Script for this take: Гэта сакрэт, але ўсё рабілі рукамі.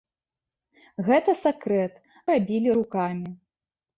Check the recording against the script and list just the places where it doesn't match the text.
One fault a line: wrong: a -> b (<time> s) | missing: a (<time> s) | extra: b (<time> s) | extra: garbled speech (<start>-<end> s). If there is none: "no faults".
missing: але ўсё (1.9 s)